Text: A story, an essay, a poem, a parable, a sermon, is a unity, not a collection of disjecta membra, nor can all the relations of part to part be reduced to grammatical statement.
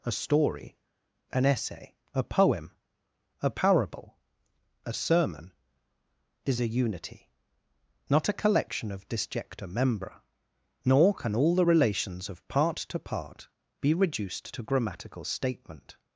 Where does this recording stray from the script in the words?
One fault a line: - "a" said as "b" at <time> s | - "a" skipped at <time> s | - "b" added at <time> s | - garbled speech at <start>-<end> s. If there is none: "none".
none